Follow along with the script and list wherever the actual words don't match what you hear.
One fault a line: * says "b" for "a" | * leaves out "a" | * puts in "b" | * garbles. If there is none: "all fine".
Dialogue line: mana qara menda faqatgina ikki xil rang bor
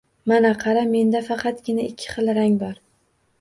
all fine